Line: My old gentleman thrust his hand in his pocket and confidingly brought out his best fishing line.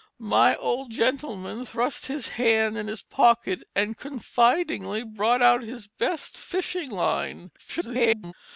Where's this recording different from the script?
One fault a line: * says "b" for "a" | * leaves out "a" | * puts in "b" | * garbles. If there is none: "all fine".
* garbles